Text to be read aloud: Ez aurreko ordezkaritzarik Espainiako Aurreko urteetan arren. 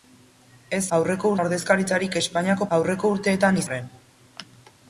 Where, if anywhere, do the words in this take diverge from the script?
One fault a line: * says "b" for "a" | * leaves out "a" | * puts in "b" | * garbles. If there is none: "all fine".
all fine